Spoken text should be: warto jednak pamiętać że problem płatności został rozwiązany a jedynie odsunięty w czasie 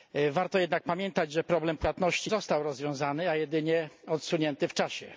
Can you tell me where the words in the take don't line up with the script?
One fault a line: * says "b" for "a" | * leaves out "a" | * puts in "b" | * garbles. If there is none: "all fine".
all fine